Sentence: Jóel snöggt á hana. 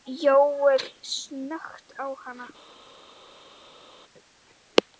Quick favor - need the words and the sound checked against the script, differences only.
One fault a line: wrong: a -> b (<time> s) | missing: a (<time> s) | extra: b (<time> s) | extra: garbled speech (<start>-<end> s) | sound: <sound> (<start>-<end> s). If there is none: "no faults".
no faults